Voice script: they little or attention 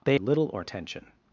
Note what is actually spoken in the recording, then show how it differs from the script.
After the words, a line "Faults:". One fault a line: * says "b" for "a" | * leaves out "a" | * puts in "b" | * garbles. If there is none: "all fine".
they little or attention
Faults:
all fine